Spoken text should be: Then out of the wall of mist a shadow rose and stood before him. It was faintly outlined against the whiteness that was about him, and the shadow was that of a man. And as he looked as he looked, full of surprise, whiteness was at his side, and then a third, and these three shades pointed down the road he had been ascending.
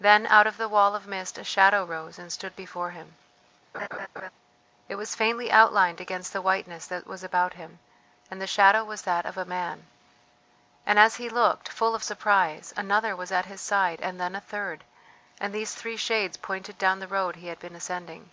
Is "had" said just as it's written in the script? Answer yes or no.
yes